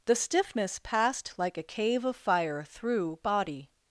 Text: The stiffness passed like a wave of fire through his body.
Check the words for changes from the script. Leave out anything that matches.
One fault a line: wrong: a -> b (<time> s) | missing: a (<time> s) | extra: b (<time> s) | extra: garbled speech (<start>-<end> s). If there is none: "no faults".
wrong: wave -> cave (1.6 s)
missing: his (3.2 s)